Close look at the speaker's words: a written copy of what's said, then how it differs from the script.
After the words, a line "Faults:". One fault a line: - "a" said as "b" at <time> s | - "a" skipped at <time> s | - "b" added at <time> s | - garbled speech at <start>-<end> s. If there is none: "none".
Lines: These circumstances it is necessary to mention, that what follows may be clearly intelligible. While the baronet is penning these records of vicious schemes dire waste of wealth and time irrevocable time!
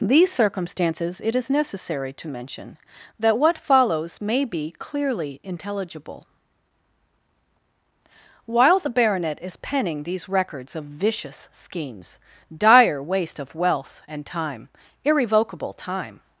These circumstances it is necessary to mention, that what follows may be clearly intelligible. While the baronet is penning these records of vicious schemes dire waste of wealth and time irrevocable time!
Faults:
none